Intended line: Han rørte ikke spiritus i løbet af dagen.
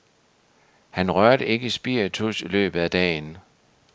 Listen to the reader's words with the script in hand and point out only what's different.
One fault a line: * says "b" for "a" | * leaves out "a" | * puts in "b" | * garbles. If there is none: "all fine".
all fine